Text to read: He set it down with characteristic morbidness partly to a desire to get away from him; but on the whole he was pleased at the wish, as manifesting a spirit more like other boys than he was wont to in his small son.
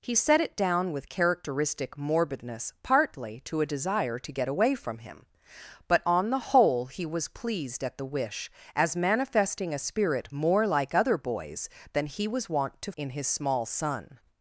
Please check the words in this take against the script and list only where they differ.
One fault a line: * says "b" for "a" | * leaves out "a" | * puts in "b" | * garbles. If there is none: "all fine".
all fine